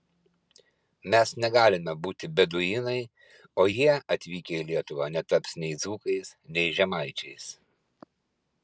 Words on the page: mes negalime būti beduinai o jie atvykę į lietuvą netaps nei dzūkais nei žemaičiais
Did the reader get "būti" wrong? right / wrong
right